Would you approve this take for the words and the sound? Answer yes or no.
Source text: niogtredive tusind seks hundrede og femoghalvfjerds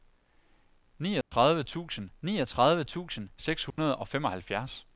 no